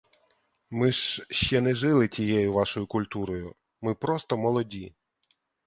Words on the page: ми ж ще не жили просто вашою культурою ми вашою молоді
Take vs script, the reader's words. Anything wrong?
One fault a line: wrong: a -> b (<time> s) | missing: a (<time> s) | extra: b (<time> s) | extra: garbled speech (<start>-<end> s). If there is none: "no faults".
wrong: просто -> тією (2.1 s)
wrong: вашою -> просто (4.0 s)